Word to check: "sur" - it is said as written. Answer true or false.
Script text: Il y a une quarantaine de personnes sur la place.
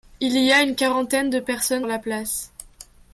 false